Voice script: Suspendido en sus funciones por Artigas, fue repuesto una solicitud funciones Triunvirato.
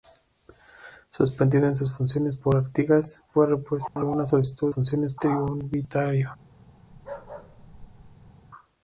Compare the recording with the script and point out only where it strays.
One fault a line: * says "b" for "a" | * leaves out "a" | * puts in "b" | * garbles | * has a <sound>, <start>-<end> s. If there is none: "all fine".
* has a dropout, 3.9-4.0 s
* has a bark, 6.9-8.3 s